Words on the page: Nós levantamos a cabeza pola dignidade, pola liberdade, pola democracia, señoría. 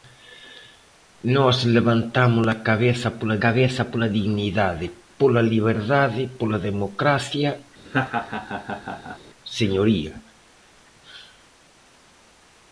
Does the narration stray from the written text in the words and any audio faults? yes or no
yes